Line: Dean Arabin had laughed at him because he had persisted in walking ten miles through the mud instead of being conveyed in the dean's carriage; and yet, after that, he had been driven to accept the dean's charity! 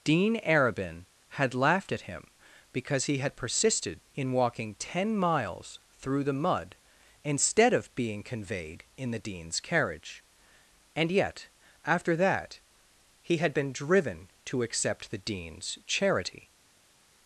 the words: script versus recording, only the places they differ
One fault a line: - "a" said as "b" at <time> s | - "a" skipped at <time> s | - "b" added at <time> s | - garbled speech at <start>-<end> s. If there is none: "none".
none